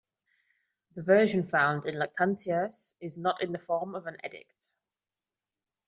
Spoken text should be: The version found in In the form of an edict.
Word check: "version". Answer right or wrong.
right